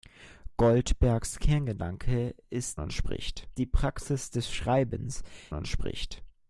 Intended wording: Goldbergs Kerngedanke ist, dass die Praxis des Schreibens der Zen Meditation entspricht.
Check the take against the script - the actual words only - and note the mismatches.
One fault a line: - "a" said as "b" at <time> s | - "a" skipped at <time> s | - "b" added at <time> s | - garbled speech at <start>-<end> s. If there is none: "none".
- "dass" said as "entspricht" at 2.8 s
- "der Zen Meditation" skipped at 5.2 s